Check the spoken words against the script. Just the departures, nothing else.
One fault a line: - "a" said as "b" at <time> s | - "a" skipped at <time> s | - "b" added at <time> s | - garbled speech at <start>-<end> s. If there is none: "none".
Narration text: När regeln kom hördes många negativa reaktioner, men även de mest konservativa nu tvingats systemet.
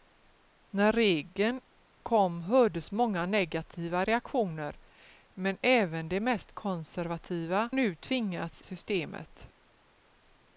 none